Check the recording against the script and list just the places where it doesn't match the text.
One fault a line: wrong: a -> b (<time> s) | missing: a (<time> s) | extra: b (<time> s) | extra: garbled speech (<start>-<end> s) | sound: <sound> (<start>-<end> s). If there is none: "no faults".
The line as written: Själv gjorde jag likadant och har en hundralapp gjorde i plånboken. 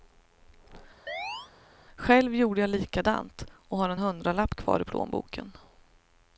sound: chirp (1.1-1.5 s)
wrong: gjorde -> kvar (4.5 s)